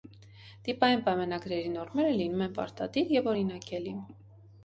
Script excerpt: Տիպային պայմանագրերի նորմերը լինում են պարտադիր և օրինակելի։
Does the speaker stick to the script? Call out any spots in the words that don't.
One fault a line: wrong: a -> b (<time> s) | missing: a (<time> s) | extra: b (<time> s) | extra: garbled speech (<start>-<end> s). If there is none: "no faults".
no faults